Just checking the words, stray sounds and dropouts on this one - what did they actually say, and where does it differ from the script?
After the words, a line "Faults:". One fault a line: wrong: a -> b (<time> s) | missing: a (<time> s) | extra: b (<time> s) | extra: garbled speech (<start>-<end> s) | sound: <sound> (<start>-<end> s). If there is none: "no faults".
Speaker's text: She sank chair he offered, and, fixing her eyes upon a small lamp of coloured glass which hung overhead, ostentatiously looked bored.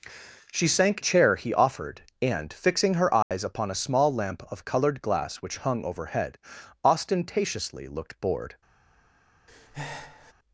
She sank chair he offered, and, fixing her eyes upon a small lamp of coloured glass which hung overhead, ostentatiously looked bored.
Faults:
sound: dropout (3.2-3.3 s)
sound: breath (9.5-10.3 s)